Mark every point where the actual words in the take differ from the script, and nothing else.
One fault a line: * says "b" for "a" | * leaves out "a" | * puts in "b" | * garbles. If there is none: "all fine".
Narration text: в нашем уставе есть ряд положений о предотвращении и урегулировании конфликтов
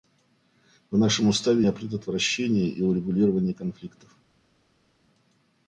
* leaves out "есть ряд положений"